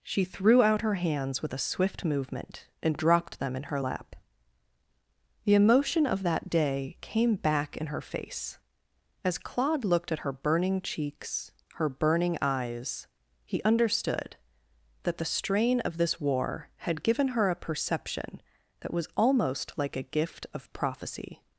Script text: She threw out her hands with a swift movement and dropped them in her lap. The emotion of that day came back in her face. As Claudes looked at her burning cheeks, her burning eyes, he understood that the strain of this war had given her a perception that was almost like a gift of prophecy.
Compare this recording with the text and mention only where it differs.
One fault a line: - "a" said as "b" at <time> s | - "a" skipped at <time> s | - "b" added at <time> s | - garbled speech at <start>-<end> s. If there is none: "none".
- "Claudes" said as "Claude" at 9.4 s